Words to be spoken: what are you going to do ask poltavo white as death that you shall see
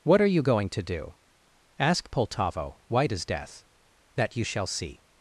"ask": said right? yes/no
yes